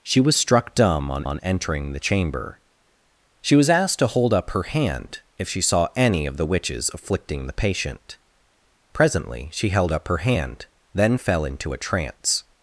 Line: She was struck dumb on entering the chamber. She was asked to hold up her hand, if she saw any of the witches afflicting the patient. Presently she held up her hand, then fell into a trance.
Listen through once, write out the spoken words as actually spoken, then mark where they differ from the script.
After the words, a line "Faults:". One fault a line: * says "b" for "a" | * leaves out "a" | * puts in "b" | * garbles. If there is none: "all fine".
She was struck dumb on on entering the chamber. She was asked to hold up her hand, if she saw any of the witches afflicting the patient. Presently she held up her hand, then fell into a trance.
Faults:
* puts in "on"